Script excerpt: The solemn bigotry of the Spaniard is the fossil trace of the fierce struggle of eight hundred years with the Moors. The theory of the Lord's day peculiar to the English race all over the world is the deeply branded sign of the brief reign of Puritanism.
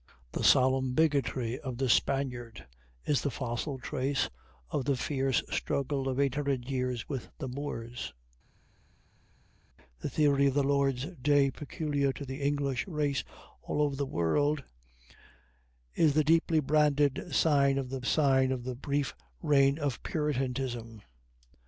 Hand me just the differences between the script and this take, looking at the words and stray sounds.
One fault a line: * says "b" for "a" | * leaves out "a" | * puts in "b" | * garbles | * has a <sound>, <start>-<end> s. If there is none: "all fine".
* puts in "sign of the"